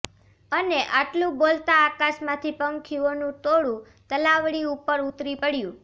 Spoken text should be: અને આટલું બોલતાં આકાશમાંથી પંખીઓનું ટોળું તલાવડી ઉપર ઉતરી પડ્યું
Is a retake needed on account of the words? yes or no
no